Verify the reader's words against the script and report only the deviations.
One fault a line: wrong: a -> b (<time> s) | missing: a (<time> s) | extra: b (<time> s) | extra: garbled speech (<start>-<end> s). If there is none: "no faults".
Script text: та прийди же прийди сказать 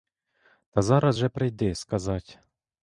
wrong: прийди -> зараз (0.8 s)